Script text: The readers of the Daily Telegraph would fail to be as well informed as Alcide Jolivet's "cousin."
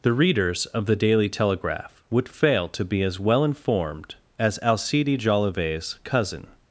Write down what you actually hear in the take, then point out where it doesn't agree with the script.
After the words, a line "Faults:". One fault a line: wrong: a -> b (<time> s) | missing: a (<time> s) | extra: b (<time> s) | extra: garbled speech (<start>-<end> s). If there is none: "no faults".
The readers of the Daily Telegraph would fail to be as well informed as Alcide Jolivet's "cousin."
Faults:
no faults